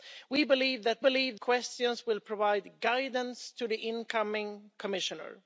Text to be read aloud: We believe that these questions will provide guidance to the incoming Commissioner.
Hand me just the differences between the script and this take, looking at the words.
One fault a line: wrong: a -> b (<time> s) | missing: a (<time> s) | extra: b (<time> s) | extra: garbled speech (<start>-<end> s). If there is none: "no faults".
wrong: these -> believe (1.0 s)